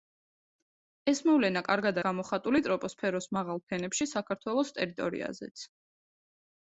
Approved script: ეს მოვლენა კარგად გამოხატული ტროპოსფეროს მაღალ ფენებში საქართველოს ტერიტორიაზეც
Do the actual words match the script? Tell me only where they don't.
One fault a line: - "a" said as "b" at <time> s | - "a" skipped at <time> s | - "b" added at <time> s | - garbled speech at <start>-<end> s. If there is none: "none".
none